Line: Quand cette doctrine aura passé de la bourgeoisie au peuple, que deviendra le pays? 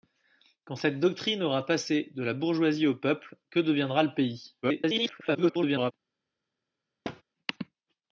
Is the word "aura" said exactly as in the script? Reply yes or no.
yes